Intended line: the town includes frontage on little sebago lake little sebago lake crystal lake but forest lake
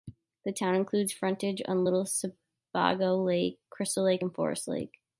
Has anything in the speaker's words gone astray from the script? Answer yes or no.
yes